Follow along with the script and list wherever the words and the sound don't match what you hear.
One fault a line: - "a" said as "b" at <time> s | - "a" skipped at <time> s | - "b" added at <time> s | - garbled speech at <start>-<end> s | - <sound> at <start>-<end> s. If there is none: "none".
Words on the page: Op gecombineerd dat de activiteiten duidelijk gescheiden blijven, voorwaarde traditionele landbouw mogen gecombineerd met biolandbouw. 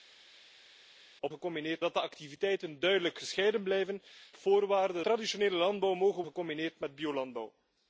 none